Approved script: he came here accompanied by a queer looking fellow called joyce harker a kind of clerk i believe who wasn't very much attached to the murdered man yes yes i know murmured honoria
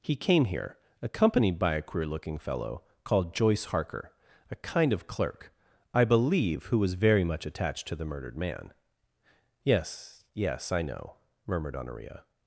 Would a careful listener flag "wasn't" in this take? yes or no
yes